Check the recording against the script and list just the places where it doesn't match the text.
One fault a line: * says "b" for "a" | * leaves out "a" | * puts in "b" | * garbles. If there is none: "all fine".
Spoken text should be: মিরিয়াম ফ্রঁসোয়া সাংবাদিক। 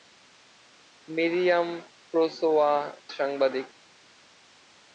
all fine